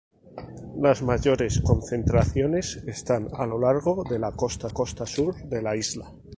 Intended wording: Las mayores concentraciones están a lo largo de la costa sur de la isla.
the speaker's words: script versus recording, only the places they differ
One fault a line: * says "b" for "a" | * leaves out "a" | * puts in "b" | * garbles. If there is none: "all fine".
* puts in "costa"